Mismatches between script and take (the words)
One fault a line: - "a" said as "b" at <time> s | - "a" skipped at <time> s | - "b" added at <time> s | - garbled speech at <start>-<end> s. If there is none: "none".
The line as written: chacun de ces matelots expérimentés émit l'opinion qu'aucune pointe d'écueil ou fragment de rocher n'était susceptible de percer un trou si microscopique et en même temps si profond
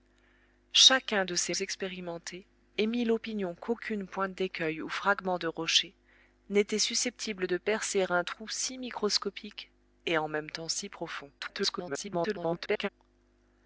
- "matelots" skipped at 1.5 s
- garbled speech at 11.4-12.9 s